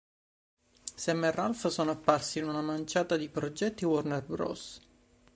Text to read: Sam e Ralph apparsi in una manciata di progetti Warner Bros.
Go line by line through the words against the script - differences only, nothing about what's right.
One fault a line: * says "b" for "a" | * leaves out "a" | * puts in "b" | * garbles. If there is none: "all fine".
* puts in "sono"